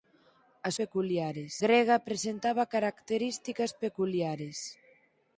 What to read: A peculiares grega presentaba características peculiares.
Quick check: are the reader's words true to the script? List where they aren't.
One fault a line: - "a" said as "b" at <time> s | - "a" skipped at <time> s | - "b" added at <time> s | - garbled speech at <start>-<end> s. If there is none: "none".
none